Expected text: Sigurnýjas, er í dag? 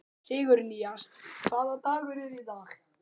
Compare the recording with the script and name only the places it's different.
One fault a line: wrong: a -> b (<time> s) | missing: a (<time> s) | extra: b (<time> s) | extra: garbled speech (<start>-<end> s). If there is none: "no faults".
extra: hvaða dagur (1.4 s)